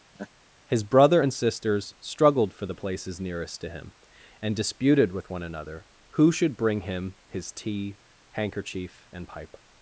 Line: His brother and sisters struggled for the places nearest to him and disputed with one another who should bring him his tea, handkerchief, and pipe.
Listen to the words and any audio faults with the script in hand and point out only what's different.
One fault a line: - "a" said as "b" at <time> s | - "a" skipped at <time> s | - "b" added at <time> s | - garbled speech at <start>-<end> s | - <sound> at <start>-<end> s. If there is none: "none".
- laugh at 0.1-0.3 s